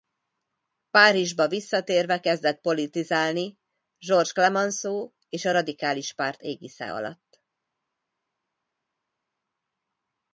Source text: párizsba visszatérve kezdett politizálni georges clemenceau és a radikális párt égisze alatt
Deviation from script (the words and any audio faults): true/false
false